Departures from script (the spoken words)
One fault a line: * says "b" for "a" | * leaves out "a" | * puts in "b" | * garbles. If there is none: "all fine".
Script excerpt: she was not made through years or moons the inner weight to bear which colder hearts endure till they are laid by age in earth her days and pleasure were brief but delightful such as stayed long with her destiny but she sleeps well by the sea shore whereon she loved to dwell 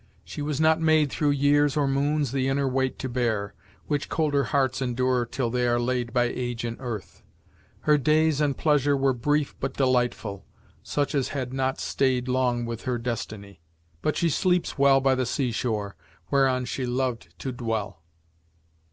* puts in "had not"